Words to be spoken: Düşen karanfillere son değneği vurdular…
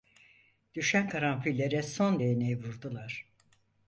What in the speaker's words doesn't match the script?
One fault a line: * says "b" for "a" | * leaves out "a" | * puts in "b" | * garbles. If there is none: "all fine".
all fine